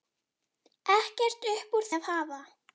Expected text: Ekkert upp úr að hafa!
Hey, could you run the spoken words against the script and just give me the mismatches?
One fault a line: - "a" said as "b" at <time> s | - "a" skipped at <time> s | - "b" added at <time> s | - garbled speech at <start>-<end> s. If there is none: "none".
none